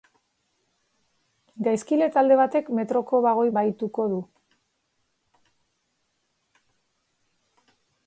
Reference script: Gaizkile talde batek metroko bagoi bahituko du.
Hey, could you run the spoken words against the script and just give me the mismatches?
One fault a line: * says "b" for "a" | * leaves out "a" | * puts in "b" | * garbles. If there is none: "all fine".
all fine